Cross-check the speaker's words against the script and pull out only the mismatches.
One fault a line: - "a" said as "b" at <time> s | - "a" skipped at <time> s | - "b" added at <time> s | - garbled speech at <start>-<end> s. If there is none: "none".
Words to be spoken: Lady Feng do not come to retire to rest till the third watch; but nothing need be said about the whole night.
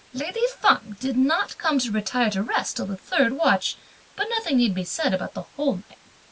- "do" said as "did" at 1.0 s